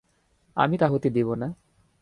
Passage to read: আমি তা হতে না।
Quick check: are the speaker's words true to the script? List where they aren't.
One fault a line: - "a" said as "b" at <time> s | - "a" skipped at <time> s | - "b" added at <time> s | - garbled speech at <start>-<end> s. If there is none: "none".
- "দিব" added at 1.1 s